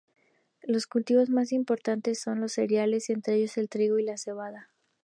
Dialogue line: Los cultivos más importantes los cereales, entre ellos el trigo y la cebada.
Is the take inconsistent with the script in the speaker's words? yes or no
yes